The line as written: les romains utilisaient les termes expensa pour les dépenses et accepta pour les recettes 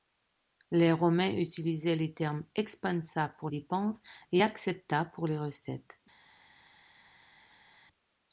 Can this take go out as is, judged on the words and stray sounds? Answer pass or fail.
fail